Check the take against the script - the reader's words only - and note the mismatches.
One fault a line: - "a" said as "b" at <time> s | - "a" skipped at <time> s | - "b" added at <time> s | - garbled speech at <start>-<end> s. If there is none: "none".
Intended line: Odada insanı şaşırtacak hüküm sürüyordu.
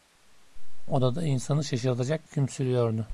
none